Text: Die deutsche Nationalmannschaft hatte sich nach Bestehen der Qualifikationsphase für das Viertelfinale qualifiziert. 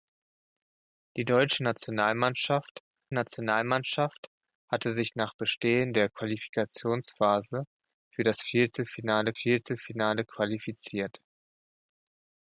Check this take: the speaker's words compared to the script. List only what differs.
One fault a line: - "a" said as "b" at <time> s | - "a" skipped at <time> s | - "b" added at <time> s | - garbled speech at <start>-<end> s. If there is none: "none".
- "Nationalmannschaft" added at 3.1 s
- "Viertelfinale" added at 9.3 s